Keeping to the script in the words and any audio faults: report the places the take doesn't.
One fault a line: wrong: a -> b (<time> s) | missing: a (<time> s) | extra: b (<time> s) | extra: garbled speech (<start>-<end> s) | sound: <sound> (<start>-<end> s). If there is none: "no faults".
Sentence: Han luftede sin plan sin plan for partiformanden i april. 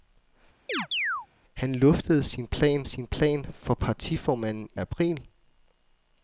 sound: chirp (0.7-1.3 s)